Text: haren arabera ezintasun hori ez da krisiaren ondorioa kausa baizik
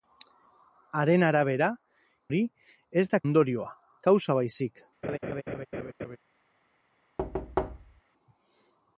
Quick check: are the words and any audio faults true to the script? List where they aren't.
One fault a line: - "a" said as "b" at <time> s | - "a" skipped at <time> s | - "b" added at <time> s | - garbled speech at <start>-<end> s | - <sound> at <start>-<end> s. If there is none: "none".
- "ezintasun" skipped at 1.7 s
- "krisiaren" skipped at 3.2 s
- laugh at 5.0-6.2 s
- thud at 7.2-8.0 s